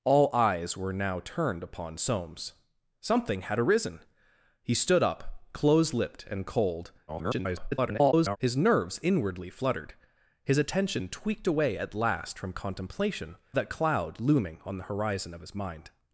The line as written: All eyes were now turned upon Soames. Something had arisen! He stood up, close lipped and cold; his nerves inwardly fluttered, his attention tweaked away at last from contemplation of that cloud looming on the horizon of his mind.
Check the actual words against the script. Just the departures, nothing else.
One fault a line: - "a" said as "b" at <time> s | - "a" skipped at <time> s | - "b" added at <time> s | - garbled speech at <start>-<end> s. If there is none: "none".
- garbled speech at 7.1-8.4 s
- "of" skipped at 13.4 s